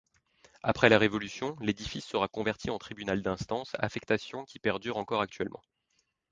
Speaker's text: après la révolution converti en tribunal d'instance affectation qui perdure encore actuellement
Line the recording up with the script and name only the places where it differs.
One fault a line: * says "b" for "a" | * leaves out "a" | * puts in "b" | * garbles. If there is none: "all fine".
* puts in "l'édifice sera"